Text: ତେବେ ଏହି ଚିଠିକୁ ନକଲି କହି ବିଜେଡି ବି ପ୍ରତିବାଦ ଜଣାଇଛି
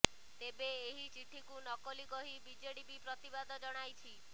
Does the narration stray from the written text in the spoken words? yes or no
no